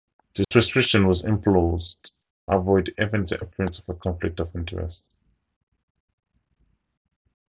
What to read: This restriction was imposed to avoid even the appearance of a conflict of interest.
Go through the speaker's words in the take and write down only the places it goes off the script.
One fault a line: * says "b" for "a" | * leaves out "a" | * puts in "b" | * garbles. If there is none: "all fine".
* leaves out "to"